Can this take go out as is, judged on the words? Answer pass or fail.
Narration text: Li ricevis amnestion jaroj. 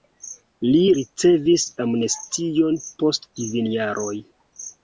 fail